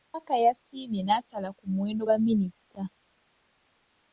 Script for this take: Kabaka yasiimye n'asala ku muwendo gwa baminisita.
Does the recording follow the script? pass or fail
fail